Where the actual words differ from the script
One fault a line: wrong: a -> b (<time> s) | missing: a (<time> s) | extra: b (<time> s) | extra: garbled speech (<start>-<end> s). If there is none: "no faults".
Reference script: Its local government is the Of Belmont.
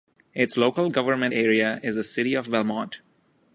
extra: area (1.3 s)
extra: City (2.0 s)